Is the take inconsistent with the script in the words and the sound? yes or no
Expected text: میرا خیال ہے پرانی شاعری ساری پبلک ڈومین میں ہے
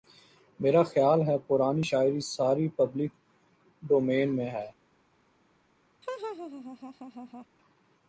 yes